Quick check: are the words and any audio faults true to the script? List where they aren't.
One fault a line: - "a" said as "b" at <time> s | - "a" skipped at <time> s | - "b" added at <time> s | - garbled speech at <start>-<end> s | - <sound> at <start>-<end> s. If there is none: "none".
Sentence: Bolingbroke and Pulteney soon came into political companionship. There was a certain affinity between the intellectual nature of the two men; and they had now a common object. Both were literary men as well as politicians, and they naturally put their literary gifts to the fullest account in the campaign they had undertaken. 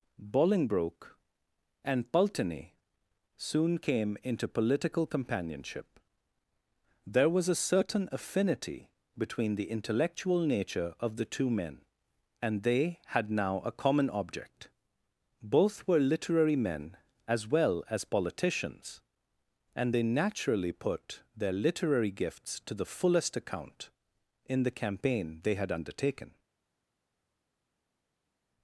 none